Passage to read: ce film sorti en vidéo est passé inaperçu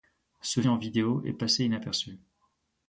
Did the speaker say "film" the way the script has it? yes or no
no